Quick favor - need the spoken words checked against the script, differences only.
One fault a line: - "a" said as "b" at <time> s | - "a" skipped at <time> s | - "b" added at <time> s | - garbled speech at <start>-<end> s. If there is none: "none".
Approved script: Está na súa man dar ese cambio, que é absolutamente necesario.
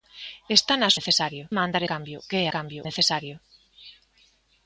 - "súa" said as "necesario" at 1.0 s
- "ese" skipped at 1.8 s
- "absolutamente" said as "cambio" at 2.5 s